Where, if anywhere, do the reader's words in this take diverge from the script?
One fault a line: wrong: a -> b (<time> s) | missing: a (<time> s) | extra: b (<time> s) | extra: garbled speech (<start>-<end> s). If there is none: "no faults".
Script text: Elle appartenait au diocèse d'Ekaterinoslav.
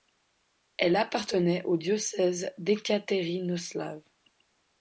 no faults